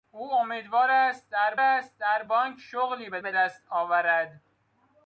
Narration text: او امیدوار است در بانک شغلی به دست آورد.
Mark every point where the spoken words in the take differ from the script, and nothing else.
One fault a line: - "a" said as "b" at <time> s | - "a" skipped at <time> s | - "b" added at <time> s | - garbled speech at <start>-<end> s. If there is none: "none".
- "است در" added at 1.6 s
- "به" added at 3.2 s